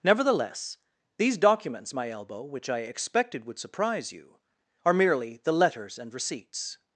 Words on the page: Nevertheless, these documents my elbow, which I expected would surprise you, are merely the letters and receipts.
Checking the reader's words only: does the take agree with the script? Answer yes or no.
yes